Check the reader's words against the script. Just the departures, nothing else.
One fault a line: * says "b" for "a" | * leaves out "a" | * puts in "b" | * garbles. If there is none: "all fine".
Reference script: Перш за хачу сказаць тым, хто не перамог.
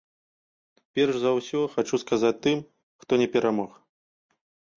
* puts in "ўсё"